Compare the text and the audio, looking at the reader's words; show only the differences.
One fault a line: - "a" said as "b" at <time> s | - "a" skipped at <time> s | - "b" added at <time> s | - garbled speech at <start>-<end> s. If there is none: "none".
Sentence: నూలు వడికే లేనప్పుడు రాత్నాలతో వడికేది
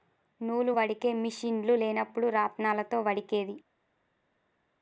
- "మిషిన్లు" added at 1.1 s